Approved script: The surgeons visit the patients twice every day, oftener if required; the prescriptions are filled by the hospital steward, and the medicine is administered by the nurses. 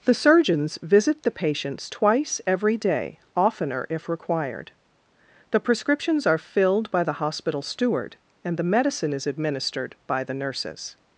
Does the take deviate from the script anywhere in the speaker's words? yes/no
no